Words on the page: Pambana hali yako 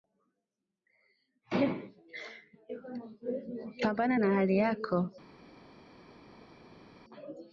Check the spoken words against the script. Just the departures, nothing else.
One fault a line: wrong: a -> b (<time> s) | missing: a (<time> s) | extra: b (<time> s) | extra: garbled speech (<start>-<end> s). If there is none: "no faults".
extra: na (4.2 s)